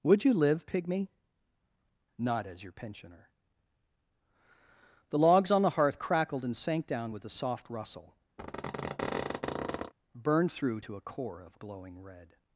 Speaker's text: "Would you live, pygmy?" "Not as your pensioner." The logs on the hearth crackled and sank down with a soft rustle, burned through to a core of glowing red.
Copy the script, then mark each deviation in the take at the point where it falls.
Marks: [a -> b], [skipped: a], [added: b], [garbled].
"Would you live, pygmy?" "Not as your pensioner." The logs on the hearth crackled and sank down with a soft rustle, burned through to a core of glowing red.